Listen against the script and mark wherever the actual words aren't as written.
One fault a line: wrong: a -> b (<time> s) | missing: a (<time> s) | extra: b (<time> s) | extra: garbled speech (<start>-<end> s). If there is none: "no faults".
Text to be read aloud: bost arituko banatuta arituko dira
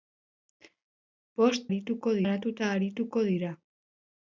no faults